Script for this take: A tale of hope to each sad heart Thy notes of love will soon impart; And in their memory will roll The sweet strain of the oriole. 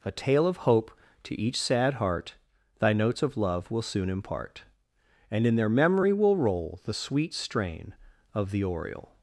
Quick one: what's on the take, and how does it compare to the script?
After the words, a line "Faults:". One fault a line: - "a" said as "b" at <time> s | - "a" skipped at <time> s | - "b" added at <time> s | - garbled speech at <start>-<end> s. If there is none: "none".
A tale of hope to each sad heart Thy notes of love will soon impart; And in their memory will roll The sweet strain of the oriole.
Faults:
none